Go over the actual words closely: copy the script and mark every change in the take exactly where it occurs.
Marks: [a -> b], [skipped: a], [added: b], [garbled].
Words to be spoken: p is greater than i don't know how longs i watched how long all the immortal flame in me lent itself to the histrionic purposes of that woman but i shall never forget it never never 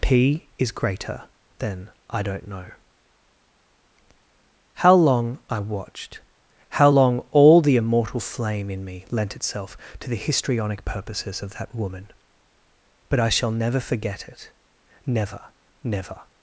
p is greater than i don't know how [longs -> long] i watched how long all the immortal flame in me lent itself to the histrionic purposes of that woman but i shall never forget it never never